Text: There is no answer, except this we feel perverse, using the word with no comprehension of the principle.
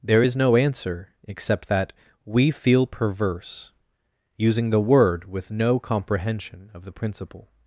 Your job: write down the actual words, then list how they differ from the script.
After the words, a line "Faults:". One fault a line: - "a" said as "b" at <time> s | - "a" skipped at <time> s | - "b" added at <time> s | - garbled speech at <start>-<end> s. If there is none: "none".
There is no answer, except that we feel perverse, using the word with no comprehension of the principle.
Faults:
- "this" said as "that" at 1.7 s